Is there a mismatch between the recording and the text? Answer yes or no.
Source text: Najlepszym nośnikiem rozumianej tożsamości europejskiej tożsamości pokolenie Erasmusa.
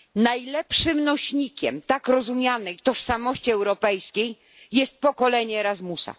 yes